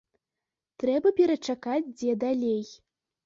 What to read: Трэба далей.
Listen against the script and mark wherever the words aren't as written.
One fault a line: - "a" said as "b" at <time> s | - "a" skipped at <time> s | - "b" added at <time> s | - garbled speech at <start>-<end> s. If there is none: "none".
- "перачакаць дзе" added at 1.2 s